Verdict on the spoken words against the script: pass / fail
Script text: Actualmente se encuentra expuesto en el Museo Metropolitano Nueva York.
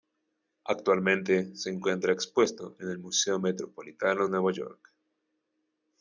pass